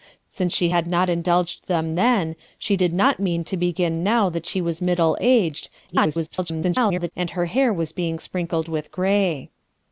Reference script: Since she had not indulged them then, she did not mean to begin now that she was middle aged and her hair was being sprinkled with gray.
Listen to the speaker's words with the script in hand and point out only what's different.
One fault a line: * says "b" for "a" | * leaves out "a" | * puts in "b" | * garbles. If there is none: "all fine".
* garbles